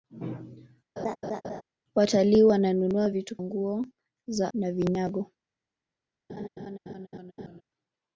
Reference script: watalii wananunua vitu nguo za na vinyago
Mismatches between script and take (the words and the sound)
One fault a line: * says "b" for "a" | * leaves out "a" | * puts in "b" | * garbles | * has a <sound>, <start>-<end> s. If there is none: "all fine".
* has a laugh, 1.0-1.6 s
* has a laugh, 6.3-7.6 s